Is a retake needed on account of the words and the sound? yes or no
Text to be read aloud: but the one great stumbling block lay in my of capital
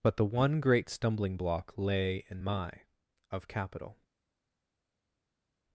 no